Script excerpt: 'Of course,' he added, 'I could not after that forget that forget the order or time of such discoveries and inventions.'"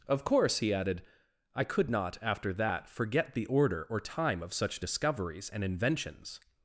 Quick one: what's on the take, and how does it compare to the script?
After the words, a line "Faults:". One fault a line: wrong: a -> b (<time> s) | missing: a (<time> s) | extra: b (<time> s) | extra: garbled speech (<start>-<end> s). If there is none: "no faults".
'Of course,' he added, 'I could not after that forget the order or time of such discoveries and inventions.'"
Faults:
missing: that forget (3.4 s)